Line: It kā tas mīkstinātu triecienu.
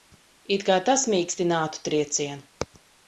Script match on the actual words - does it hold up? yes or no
yes